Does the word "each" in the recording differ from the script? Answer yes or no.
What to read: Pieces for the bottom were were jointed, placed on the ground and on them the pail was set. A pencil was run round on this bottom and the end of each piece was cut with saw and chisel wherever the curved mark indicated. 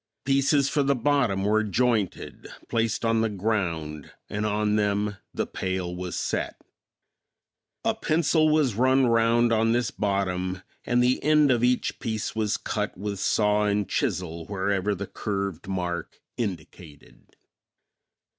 no